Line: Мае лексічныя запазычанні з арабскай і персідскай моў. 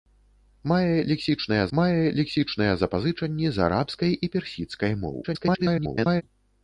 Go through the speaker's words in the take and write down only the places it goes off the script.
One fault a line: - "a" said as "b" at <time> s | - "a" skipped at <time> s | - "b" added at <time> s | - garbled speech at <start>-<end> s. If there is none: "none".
- "мае лексічныя" added at 1.8 s
- garbled speech at 5.2-6.2 s